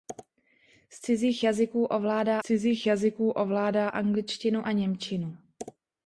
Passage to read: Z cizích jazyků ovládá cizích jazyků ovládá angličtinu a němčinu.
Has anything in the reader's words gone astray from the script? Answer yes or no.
no